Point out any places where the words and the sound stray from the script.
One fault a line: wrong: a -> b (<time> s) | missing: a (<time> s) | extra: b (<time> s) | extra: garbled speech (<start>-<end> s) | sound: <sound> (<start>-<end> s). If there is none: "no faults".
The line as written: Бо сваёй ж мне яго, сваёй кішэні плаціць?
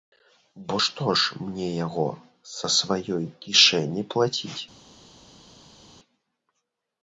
wrong: сваёй -> што (0.8 s)
extra: са (2.5 s)